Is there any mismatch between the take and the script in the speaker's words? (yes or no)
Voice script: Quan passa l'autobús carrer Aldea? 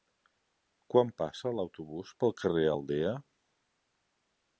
yes